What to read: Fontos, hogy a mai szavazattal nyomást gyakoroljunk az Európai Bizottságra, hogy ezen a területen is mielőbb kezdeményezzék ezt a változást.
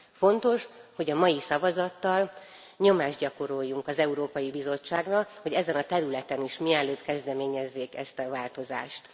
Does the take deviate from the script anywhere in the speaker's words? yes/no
no